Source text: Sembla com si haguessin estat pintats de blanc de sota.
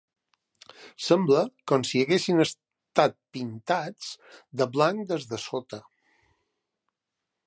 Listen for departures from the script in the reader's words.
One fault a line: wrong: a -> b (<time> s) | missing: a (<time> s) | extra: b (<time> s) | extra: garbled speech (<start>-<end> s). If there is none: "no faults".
extra: des (5.1 s)